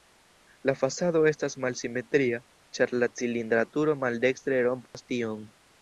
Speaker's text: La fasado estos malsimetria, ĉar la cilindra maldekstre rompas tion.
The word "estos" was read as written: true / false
false